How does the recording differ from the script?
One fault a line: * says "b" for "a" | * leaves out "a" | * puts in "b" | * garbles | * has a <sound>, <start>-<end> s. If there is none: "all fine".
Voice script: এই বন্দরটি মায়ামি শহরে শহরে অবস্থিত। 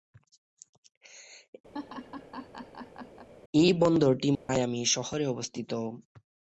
* has a laugh, 1.7-3.3 s
* has a dropout, 4.3-4.5 s
* leaves out "শহরে"